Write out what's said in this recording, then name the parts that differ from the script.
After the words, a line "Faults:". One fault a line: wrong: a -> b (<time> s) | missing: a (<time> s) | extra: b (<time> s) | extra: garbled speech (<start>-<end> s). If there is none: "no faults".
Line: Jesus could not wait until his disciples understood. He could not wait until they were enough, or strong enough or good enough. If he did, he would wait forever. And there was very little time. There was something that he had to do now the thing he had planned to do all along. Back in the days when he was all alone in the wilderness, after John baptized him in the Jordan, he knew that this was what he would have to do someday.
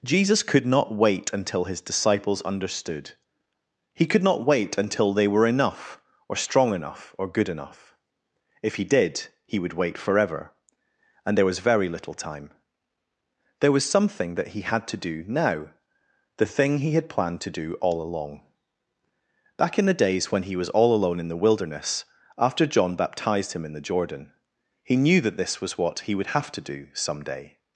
Jesus could not wait until his disciples understood. He could not wait until they were enough, or strong enough or good enough. If he did, he would wait forever. And there was very little time. There was something that he had to do now the thing he had planned to do all along. Back in the days when he was all alone in the wilderness, after John baptized him in the Jordan, he knew that this was what he would have to do someday.
Faults:
no faults